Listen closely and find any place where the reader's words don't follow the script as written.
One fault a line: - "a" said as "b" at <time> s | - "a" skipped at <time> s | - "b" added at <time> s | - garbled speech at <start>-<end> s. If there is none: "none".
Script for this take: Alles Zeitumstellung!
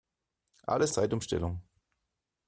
none